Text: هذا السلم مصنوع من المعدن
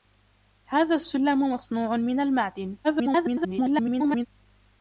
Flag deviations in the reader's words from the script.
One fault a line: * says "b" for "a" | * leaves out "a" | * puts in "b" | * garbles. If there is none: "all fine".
* garbles